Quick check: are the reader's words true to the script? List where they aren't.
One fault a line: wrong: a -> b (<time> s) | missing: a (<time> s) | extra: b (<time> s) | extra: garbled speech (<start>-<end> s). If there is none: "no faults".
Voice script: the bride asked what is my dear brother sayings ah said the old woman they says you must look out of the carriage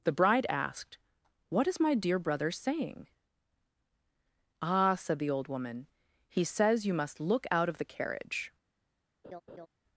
wrong: sayings -> saying (2.5 s)
wrong: they -> he (6.3 s)